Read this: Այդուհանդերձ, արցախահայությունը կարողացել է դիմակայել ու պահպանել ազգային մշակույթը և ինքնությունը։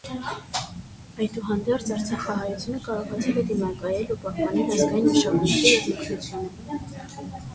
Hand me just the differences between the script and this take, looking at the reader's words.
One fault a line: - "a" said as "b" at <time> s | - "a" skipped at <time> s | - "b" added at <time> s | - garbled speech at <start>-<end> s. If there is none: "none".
none